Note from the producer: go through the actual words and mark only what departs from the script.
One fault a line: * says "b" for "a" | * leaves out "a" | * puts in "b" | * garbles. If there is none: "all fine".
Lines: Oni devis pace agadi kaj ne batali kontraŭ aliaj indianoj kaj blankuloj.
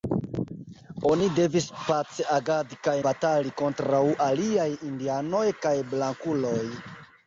* leaves out "ne"